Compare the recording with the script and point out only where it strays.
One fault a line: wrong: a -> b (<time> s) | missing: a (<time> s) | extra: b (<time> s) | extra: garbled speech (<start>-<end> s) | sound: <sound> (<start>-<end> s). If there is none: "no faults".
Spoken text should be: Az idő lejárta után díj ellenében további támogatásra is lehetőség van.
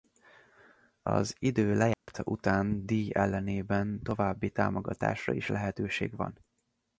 sound: dropout (1.9-2.1 s)